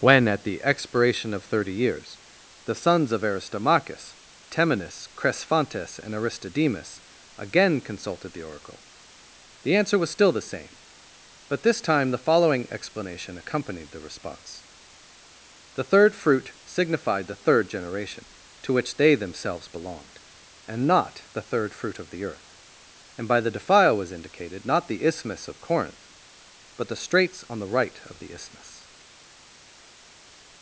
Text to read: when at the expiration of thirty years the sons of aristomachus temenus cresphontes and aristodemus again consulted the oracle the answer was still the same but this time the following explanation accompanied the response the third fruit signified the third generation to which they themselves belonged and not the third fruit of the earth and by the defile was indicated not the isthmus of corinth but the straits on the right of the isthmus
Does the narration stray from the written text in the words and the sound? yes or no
no